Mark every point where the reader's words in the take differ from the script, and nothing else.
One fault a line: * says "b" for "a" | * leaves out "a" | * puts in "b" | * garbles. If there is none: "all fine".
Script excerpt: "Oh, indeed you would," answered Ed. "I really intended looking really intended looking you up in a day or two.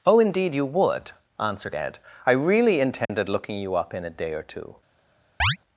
* leaves out "really intended looking"